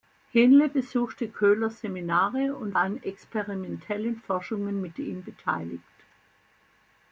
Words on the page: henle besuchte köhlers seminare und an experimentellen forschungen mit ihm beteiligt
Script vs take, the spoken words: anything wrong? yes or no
no